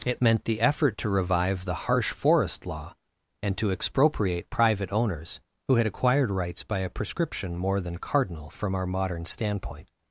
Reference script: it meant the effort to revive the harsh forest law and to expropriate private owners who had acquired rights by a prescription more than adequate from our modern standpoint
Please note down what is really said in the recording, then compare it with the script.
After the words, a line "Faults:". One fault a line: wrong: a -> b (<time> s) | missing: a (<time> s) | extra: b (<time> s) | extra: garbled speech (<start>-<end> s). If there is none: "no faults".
it meant the effort to revive the harsh forest law and to expropriate private owners who had acquired rights by a prescription more than cardinal from our modern standpoint
Faults:
wrong: adequate -> cardinal (8.0 s)